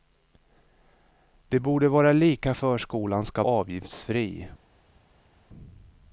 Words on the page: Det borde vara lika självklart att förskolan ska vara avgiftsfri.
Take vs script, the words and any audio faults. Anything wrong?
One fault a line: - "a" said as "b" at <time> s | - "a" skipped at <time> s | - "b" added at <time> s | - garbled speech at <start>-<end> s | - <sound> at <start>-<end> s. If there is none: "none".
- "självklart att" skipped at 2.5 s
- "vara" skipped at 3.4 s